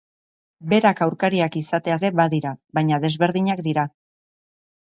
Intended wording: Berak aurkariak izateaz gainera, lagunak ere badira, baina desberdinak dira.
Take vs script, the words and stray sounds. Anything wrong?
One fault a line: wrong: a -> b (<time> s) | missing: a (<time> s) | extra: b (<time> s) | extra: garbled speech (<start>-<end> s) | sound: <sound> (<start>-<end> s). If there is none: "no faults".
missing: gainera lagunak (2.0 s)